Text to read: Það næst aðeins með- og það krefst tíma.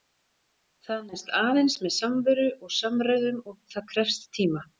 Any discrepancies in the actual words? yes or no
yes